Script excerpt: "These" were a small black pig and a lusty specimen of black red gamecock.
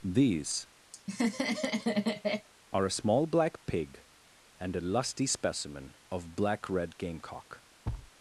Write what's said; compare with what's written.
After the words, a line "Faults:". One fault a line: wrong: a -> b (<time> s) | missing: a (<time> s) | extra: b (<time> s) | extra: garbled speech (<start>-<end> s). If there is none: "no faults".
"These" are a small black pig and a lusty specimen of black red gamecock.
Faults:
wrong: were -> are (2.7 s)